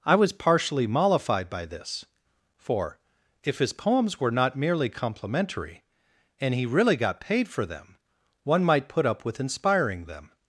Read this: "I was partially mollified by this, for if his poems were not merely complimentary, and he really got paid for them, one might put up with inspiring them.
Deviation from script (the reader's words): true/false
false